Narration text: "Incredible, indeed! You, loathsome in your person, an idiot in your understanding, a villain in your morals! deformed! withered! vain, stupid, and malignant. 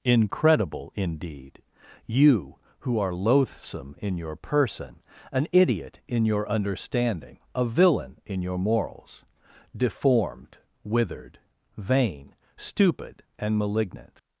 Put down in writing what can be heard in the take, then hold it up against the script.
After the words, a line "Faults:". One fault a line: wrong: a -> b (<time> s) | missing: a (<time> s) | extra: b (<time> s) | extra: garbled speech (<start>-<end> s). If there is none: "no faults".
"Incredible, indeed! You, who are loathsome in your person, an idiot in your understanding, a villain in your morals! deformed! withered! vain, stupid, and malignant.
Faults:
extra: who are (2.8 s)